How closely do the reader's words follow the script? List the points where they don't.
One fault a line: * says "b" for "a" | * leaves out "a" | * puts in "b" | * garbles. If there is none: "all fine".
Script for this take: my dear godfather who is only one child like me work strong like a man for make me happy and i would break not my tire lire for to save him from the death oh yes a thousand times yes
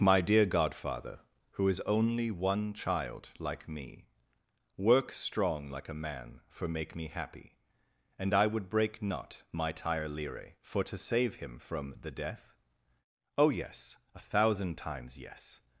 all fine